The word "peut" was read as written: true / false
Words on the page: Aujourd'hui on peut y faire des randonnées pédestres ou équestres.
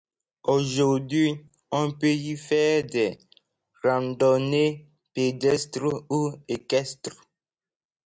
true